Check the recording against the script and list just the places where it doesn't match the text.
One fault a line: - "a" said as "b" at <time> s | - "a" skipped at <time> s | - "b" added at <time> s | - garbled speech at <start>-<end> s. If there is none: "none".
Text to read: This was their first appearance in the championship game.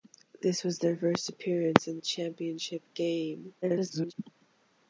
- garbled speech at 3.6-4.1 s